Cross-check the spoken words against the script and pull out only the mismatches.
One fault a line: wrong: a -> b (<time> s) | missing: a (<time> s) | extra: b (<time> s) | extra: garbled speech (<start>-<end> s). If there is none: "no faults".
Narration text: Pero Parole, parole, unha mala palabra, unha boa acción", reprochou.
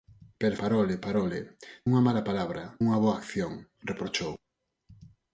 no faults